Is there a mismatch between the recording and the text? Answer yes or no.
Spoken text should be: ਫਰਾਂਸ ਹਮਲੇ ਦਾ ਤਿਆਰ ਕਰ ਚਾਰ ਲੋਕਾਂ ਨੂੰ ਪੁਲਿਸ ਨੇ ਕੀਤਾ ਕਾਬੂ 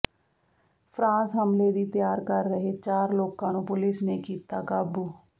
yes